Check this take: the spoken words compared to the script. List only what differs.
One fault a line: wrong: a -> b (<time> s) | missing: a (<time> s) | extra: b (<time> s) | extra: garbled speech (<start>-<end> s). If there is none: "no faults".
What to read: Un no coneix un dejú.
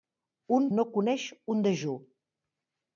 no faults